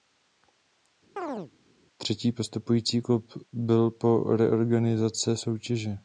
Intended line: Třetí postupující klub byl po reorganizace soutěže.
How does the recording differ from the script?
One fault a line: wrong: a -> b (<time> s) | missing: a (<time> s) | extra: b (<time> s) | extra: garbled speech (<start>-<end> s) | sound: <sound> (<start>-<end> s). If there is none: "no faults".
sound: chirp (1.2-1.5 s)